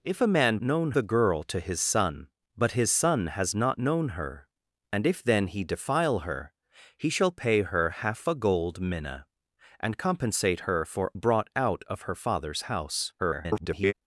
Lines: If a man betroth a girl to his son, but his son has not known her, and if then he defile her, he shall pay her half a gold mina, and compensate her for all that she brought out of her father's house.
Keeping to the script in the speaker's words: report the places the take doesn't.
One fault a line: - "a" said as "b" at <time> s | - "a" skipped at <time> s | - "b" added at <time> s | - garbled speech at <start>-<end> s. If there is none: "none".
- "betroth" said as "known" at 0.6 s
- "all that she" skipped at 11.1 s
- garbled speech at 13.2-13.9 s